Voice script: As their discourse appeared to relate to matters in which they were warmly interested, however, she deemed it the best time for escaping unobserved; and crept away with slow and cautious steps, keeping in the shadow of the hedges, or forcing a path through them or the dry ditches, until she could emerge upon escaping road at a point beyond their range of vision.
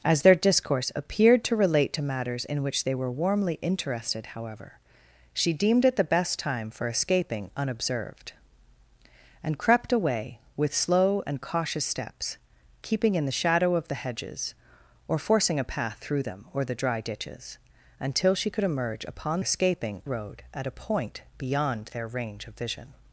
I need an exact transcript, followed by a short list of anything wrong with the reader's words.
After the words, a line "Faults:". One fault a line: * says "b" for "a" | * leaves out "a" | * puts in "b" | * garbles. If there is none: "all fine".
As their discourse appeared to relate to matters in which they were warmly interested, however, she deemed it the best time for escaping unobserved; and crept away with slow and cautious steps, keeping in the shadow of the hedges, or forcing a path through them or the dry ditches, until she could emerge upon escaping road at a point beyond their range of vision.
Faults:
all fine